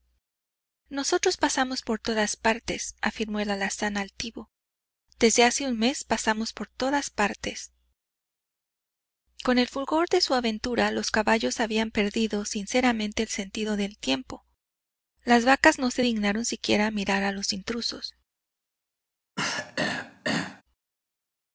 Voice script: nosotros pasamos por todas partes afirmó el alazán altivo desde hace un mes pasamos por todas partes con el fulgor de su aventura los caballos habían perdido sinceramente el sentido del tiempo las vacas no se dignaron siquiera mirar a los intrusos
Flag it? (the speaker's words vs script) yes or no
no